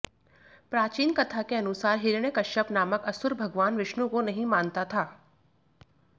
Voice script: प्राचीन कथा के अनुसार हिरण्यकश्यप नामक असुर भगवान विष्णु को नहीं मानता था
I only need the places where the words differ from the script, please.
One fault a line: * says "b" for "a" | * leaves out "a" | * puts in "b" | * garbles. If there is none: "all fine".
all fine